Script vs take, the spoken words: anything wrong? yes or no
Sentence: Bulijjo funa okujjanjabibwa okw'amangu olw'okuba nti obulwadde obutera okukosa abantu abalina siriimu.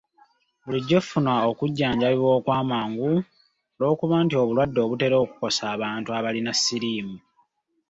no